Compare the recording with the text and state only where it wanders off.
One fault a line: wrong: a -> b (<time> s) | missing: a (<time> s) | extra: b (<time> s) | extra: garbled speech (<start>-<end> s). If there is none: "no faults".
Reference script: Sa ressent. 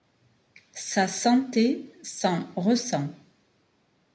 extra: santé s'en (1.1 s)